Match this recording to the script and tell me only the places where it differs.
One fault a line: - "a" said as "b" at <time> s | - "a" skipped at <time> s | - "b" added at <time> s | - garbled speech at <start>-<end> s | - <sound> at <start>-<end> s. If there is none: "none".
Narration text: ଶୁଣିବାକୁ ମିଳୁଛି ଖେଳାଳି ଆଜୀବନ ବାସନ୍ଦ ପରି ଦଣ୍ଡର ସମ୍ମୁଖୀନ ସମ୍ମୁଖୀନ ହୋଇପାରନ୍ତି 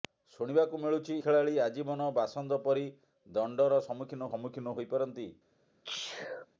- sneeze at 5.8-6.5 s